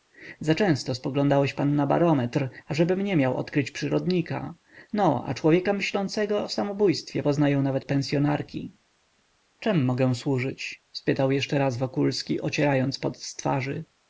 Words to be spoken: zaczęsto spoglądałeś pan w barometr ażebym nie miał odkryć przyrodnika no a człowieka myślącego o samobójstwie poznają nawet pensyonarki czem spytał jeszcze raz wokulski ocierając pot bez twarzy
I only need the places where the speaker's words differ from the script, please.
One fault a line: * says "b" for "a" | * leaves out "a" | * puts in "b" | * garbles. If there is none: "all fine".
* says "na" for "w"
* puts in "mogę służyć"
* says "z" for "bez"